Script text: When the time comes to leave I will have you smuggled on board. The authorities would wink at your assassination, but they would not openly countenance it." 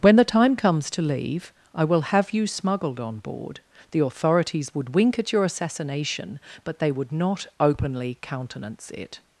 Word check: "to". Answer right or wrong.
right